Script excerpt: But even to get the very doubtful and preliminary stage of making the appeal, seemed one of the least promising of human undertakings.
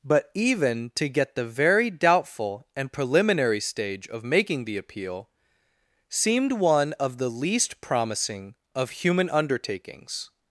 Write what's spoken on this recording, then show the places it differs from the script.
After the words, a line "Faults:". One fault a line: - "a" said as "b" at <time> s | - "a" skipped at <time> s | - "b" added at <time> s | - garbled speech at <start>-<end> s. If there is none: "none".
But even to get the very doubtful and preliminary stage of making the appeal, seemed one of the least promising of human undertakings.
Faults:
none